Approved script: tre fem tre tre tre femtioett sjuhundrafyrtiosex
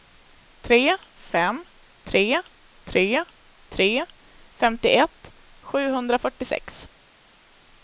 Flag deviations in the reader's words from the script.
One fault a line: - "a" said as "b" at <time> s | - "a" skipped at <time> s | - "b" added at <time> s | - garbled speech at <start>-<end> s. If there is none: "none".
none